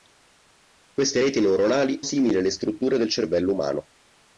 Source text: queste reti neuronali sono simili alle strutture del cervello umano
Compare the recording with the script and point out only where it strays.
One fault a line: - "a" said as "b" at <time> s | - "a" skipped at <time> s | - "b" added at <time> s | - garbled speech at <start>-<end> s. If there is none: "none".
- "sono" skipped at 2.1 s